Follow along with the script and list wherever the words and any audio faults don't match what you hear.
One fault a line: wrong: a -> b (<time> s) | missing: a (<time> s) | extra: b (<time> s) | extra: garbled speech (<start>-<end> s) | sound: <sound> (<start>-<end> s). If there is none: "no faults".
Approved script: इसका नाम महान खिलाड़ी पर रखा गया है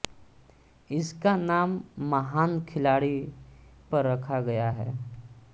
no faults